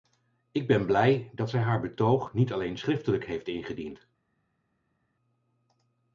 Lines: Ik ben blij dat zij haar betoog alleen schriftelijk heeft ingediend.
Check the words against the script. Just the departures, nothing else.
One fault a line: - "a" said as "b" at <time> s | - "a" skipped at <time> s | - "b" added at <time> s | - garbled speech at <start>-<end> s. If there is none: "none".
- "niet" added at 2.3 s